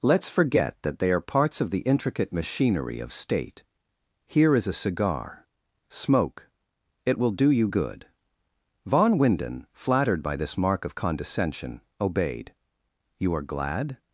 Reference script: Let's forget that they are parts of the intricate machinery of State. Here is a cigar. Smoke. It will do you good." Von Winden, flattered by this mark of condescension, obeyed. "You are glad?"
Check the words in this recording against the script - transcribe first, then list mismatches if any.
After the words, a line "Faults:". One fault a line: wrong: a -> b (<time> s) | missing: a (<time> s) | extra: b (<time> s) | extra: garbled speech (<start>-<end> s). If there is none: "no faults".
Let's forget that they are parts of the intricate machinery of State. Here is a cigar. Smoke. It will do you good." Von Winden, flattered by this mark of condescension, obeyed. "You are glad?"
Faults:
no faults